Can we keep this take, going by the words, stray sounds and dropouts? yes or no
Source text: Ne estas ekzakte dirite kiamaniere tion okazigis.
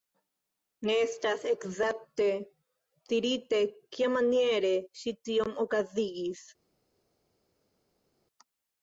no